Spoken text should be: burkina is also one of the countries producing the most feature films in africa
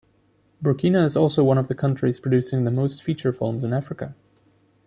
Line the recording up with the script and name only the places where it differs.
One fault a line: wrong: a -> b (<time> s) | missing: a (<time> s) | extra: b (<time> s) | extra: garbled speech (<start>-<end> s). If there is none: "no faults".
no faults